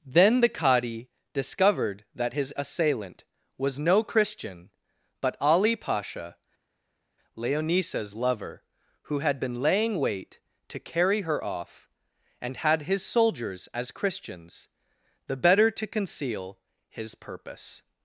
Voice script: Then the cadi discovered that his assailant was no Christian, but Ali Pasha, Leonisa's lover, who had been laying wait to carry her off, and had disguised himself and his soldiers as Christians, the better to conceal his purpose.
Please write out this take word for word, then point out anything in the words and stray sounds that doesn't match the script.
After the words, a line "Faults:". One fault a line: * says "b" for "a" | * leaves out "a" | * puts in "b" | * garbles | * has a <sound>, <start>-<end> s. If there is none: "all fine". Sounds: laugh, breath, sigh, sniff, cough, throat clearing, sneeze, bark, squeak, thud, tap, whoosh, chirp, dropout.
Then the cadi discovered that his assailant was no Christian, but Ali Pasha, Leonisa's lover, who had been laying wait to carry her off, and had his soldiers as Christians, the better to conceal his purpose.
Faults:
* leaves out "disguised himself and"